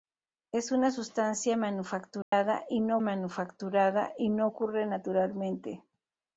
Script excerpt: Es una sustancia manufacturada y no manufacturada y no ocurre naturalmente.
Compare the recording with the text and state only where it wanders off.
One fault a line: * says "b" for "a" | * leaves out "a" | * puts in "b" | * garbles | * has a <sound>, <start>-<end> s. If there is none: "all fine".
* has a dropout, 2.2-2.3 s